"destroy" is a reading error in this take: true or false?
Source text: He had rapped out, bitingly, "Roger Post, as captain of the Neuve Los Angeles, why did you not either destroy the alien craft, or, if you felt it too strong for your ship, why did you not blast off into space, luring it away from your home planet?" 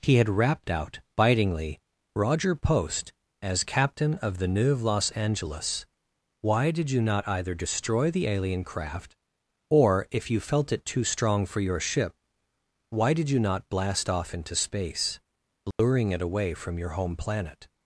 false